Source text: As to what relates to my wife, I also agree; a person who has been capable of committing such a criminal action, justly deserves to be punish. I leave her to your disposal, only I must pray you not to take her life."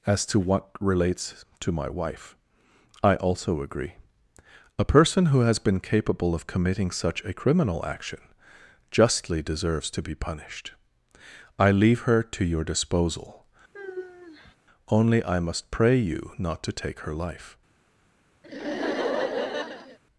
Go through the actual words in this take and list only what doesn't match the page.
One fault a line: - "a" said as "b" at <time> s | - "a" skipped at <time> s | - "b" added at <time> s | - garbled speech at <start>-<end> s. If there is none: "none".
- "punish" said as "punished" at 10.1 s